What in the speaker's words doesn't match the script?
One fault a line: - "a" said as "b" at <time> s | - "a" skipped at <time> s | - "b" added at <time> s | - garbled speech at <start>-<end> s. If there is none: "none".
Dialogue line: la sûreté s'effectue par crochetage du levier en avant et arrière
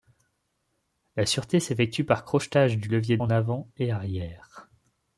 none